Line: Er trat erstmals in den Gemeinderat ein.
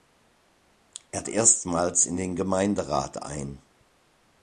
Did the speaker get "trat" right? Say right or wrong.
wrong